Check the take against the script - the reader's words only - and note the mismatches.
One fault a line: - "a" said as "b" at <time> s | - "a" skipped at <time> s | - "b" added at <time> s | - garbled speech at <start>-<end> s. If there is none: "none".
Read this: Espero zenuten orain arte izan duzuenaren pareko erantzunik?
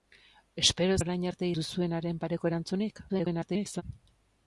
- "zenuten" skipped at 0.9 s
- "izan" skipped at 1.5 s
- garbled speech at 3.1-3.8 s